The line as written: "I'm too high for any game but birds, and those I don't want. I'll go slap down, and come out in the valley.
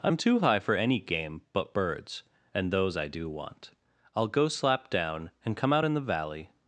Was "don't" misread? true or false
true